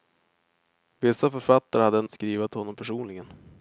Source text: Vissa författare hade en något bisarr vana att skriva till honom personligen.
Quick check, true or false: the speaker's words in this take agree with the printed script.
false